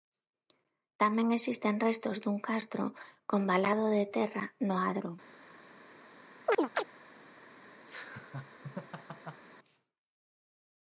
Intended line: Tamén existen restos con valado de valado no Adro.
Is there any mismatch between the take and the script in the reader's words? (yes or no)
yes